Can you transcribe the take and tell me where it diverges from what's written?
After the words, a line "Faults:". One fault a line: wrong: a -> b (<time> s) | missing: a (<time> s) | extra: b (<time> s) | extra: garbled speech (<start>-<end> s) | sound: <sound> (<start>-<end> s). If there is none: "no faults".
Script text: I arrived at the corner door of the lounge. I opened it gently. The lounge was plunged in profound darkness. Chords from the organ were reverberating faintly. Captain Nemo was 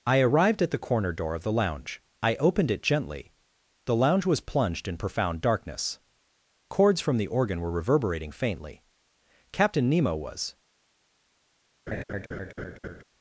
I arrived at the corner door of the lounge. I opened it gently. The lounge was plunged in profound darkness. Chords from the organ were reverberating faintly. Captain Nemo was
Faults:
sound: laugh (11.9-13.0 s)